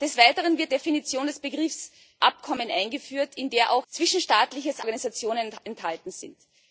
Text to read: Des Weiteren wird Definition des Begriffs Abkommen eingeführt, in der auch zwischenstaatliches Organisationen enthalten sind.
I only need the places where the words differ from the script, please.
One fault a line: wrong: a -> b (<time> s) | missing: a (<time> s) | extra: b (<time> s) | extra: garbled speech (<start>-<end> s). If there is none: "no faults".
no faults